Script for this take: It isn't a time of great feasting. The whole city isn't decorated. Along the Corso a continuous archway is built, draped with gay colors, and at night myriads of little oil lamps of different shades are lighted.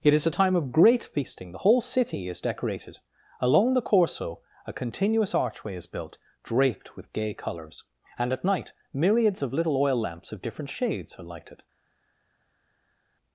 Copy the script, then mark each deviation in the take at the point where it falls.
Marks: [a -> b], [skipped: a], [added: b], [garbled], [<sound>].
It [isn't -> is] a time of great feasting. The whole city [isn't -> is] decorated. Along the Corso a continuous archway is built, draped with gay colors, and at night myriads of little oil lamps of different shades are lighted.